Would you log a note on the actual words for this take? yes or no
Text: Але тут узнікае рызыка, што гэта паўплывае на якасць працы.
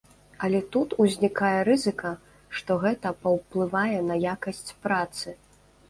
no